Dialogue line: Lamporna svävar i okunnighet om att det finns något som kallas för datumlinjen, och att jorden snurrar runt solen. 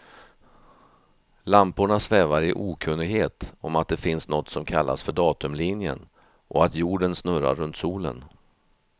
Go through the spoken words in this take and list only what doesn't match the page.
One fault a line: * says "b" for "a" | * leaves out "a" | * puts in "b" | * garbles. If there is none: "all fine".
all fine